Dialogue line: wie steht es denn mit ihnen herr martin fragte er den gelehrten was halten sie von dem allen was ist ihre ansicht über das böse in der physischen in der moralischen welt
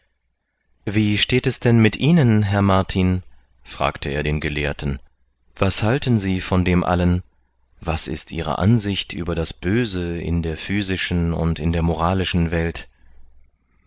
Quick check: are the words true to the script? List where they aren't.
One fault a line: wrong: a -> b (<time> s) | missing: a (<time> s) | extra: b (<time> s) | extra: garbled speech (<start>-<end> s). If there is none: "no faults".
extra: und (11.3 s)